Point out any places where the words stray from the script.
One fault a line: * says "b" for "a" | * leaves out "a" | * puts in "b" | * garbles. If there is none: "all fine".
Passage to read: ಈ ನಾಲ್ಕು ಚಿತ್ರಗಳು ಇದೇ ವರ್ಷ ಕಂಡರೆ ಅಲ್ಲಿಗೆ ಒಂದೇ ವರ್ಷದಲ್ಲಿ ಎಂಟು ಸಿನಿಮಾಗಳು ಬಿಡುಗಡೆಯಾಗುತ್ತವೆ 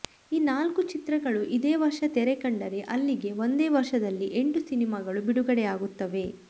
* puts in "ತೆರೆ"